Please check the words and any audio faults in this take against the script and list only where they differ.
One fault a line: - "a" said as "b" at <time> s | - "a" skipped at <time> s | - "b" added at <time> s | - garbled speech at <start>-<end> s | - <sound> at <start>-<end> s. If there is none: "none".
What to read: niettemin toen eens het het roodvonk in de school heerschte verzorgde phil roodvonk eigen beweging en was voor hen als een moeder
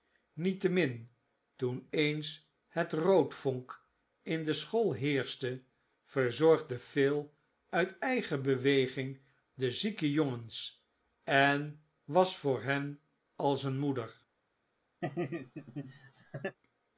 - "het" skipped at 2.9 s
- "roodvonk" said as "uit" at 7.7 s
- "de zieke jongens" added at 9.5 s
- laugh at 15.0-16.6 s